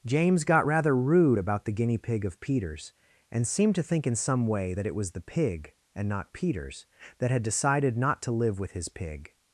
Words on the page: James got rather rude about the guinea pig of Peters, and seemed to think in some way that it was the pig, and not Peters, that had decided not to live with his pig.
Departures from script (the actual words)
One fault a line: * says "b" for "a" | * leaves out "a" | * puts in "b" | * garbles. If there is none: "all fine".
all fine